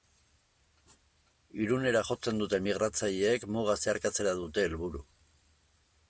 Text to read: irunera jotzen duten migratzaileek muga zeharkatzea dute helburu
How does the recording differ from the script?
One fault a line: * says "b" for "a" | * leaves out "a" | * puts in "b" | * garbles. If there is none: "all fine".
all fine